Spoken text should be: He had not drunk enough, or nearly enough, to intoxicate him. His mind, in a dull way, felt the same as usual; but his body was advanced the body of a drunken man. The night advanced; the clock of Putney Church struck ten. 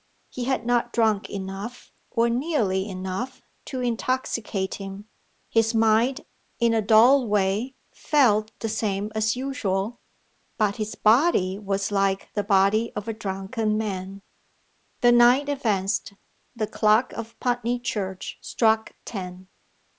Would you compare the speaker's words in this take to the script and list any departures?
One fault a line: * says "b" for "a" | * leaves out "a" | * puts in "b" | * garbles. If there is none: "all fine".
* says "like" for "advanced"